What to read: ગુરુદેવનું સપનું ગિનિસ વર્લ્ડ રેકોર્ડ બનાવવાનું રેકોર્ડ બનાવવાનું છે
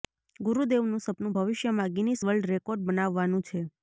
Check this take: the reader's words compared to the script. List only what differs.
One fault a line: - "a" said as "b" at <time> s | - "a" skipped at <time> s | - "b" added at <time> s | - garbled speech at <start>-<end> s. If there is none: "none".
- "ભવિષ્યમાં" added at 1.3 s
- "રેકોર્ડ બનાવવાનું" skipped at 3.5 s